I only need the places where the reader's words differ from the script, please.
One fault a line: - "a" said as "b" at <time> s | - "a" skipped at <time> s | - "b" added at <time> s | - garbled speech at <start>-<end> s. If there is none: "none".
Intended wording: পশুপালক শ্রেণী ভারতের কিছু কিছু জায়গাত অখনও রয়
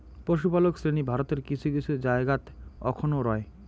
none